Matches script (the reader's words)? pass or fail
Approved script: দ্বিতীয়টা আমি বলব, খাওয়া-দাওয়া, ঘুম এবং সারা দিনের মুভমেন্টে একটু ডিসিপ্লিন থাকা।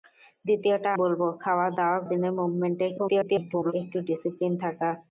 fail